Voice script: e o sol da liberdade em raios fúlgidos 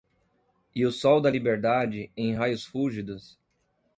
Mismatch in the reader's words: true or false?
false